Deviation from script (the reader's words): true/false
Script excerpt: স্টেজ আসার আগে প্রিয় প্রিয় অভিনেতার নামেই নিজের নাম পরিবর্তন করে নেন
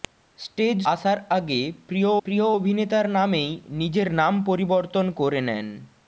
false